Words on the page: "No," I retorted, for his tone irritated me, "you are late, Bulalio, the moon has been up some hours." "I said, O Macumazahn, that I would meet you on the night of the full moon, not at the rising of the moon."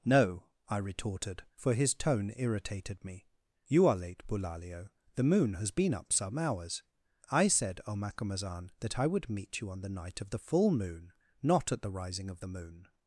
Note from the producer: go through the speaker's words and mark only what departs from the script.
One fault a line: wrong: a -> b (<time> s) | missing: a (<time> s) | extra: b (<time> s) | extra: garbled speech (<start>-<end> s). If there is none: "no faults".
no faults